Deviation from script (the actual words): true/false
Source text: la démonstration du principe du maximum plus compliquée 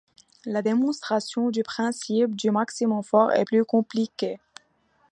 true